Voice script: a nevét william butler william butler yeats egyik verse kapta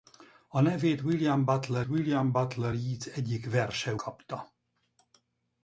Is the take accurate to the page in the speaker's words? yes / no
yes